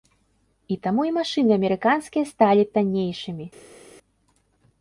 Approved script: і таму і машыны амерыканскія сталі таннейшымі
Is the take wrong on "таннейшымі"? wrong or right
right